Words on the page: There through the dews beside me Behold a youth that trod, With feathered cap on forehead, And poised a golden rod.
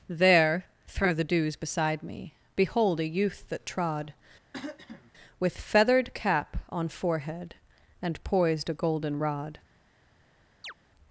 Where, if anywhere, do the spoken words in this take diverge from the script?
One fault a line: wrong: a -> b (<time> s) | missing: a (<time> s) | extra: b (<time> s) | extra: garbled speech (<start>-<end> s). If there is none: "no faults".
no faults